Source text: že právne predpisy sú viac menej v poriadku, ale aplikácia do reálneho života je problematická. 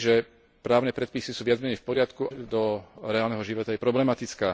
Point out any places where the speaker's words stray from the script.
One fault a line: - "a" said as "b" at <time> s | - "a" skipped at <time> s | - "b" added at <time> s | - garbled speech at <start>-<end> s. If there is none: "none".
- "ale aplikácia" skipped at 2.3 s